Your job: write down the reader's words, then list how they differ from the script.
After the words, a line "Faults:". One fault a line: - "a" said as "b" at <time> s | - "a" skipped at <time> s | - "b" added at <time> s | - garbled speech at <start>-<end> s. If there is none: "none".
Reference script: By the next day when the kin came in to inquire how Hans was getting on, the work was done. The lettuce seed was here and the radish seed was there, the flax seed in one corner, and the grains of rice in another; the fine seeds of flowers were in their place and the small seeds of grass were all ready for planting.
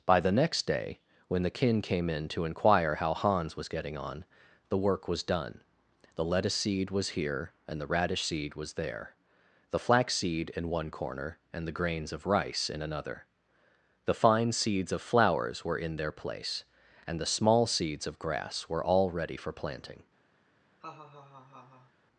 By the next day when the kin came in to inquire how Hans was getting on, the work was done. The lettuce seed was here and the radish seed was there, the flax seed in one corner, and the grains of rice in another; the fine seeds of flowers were in their place and the small seeds of grass were all ready for planting.
Faults:
none